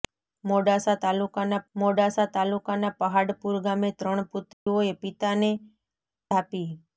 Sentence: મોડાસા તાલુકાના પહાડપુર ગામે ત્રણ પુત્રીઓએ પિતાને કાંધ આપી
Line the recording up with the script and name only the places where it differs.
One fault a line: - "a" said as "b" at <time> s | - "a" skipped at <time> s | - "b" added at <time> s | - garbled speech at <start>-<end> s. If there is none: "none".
- "મોડાસા તાલુકાના" added at 1.7 s
- "કાંધ" skipped at 5.5 s